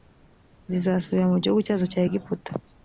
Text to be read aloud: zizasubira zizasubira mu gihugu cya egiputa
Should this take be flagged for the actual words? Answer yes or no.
yes